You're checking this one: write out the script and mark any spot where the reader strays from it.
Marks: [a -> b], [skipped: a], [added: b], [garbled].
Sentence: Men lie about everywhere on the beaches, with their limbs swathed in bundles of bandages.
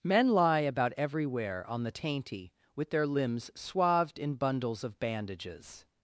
Men lie about everywhere on the [beaches, -> tainty] with their limbs swathed in bundles of bandages.